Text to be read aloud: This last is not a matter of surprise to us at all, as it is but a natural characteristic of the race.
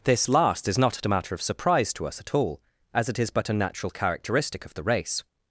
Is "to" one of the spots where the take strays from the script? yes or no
no